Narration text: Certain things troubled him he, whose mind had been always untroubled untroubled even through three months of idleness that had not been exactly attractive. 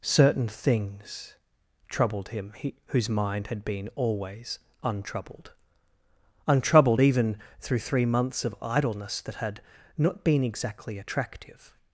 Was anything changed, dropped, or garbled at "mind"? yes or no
no